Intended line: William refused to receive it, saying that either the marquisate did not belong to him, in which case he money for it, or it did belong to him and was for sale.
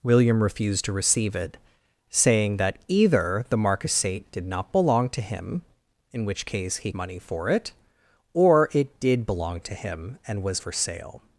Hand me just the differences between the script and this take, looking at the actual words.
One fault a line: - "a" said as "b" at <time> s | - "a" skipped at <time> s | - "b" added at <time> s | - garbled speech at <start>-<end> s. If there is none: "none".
none